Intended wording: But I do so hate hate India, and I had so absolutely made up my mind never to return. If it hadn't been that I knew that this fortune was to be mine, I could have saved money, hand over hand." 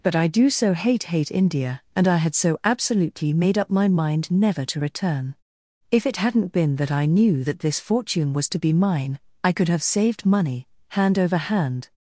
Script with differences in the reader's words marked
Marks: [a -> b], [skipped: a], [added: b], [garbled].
But I do so hate hate India, and I had so absolutely made up my mind never to return. If it hadn't been that I knew that this fortune was to be mine, I could have saved money, hand over hand."